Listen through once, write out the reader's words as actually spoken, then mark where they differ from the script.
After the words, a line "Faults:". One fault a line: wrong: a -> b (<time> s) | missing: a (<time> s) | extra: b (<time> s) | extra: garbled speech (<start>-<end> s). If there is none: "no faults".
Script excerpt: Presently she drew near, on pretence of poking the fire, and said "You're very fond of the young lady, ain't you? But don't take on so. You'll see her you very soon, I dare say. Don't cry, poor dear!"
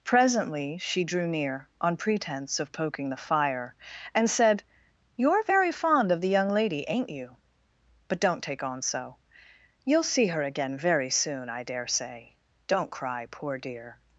Presently she drew near, on pretence of poking the fire, and said "You're very fond of the young lady, ain't you? But don't take on so. You'll see her again very soon, I dare say. Don't cry, poor dear!"
Faults:
wrong: you -> again (10.4 s)